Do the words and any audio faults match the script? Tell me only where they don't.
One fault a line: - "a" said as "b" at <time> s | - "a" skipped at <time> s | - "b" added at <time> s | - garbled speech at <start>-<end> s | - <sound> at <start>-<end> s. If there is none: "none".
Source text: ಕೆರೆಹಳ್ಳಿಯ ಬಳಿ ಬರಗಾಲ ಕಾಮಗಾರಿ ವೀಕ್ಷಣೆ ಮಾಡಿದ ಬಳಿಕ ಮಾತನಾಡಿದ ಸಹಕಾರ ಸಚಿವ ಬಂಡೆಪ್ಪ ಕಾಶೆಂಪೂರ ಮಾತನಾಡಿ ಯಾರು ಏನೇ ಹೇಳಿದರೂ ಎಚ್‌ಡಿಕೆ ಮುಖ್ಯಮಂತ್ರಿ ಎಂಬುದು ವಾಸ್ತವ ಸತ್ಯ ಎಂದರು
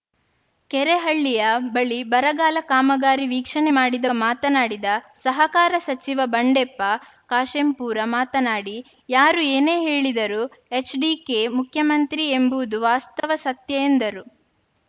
- "ಬಳಿಕ" skipped at 4.1 s
- dropout at 13.2-13.2 s